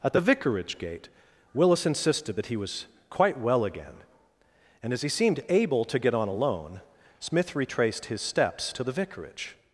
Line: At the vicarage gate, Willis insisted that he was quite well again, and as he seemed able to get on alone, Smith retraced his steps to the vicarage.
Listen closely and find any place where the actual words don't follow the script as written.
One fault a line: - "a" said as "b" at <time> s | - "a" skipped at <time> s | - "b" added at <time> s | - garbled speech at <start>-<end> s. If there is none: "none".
none